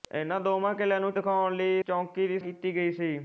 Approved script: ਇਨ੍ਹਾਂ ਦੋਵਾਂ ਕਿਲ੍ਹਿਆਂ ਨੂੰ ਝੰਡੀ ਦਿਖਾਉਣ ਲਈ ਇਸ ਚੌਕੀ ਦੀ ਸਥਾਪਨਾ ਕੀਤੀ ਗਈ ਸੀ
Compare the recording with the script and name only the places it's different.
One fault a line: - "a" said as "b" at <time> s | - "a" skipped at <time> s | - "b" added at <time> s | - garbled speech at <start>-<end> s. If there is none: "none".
- "ਝੰਡੀ" skipped at 1.1 s
- "ਇਸ" skipped at 1.8 s
- "ਸਥਾਪਨਾ" skipped at 2.4 s